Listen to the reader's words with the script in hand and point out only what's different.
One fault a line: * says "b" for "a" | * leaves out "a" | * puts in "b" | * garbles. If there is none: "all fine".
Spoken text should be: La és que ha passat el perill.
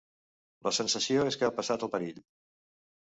* puts in "sensació"